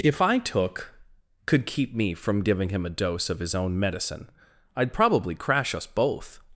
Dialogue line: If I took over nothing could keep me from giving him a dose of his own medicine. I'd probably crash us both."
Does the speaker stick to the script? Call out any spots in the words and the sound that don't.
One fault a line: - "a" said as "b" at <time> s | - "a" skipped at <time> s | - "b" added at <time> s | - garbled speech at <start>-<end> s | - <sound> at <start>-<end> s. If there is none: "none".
- "over nothing" skipped at 0.9 s